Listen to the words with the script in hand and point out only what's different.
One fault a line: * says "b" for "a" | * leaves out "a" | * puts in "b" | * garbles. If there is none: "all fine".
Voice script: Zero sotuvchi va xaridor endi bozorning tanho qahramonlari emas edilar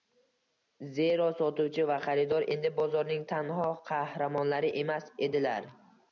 all fine